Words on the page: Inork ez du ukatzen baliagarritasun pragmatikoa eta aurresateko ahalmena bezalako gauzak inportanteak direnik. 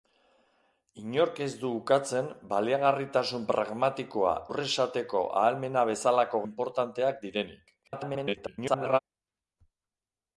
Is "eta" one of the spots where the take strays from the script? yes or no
yes